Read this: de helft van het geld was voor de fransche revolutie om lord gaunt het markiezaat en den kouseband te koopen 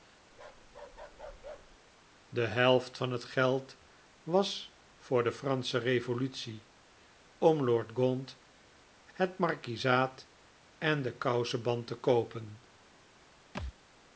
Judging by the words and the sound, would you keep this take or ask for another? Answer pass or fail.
fail